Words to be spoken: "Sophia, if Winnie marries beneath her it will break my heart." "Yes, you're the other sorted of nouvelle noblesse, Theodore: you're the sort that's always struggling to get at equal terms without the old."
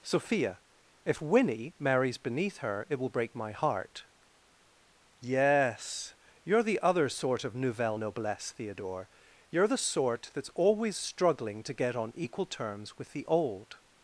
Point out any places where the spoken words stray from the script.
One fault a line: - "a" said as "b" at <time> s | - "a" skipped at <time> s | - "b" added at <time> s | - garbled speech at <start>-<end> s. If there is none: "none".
- "sorted" said as "sort" at 7.1 s
- "at" said as "on" at 11.9 s
- "without" said as "with" at 13.0 s